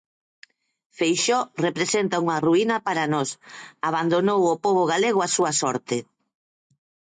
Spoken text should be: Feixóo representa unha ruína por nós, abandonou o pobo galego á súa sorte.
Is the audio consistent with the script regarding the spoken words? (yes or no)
no